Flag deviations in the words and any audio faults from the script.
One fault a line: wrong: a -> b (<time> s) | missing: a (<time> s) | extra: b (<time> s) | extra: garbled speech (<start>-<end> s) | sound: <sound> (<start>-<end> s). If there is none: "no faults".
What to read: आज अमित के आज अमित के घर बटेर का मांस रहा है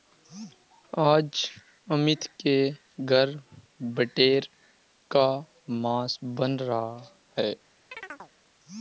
missing: आज अमित के (2.5 s)
extra: बन (6.2 s)
sound: chirp (7.9-8.3 s)